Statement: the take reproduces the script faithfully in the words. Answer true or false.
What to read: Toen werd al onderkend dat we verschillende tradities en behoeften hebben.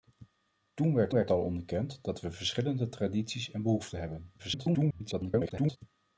false